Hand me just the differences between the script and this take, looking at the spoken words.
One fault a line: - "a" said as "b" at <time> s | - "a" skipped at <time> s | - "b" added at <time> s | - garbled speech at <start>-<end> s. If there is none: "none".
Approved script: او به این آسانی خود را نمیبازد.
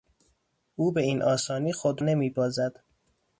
- "را" skipped at 2.0 s